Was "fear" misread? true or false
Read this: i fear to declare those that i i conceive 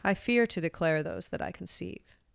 false